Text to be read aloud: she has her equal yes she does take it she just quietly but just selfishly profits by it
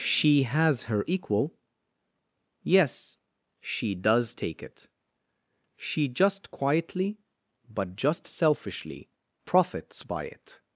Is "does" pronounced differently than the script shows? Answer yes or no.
no